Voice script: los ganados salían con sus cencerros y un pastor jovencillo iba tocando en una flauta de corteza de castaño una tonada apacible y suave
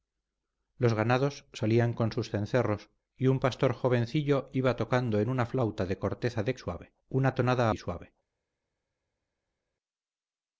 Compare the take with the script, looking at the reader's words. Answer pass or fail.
fail